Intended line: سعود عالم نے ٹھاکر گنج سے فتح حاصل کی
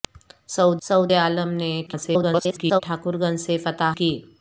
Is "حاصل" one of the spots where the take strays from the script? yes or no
yes